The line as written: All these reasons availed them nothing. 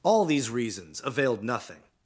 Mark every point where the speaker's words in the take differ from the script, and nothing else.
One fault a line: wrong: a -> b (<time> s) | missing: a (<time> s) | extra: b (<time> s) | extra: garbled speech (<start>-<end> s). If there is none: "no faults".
missing: them (1.4 s)